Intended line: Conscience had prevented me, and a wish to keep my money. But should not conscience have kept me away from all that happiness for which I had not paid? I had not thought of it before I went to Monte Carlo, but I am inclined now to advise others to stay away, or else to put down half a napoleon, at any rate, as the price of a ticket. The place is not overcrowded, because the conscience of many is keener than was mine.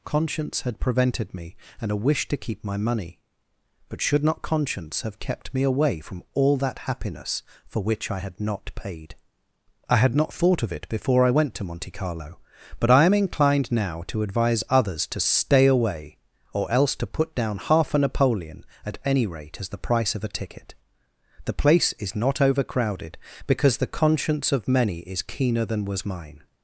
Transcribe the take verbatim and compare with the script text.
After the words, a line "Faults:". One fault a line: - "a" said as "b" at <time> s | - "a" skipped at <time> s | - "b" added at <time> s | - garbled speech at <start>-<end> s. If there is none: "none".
Conscience had prevented me, and a wish to keep my money. But should not conscience have kept me away from all that happiness for which I had not paid? I had not thought of it before I went to Monte Carlo, but I am inclined now to advise others to stay away, or else to put down half a napoleon, at any rate, as the price of a ticket. The place is not overcrowded, because the conscience of many is keener than was mine.
Faults:
none